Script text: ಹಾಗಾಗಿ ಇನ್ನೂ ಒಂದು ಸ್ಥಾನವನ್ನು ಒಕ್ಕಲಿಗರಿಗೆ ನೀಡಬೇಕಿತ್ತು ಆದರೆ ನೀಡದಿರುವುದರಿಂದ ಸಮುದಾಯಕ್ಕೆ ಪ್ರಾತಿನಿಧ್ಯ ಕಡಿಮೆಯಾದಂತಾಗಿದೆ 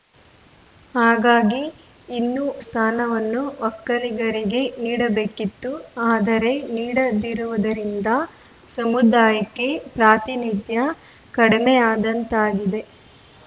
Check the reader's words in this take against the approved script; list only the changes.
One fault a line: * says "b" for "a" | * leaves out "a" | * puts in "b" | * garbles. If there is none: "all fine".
* leaves out "ಒಂದು"